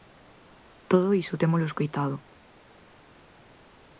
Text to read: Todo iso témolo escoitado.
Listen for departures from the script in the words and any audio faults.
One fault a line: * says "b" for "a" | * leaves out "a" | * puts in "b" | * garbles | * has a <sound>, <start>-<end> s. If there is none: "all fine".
all fine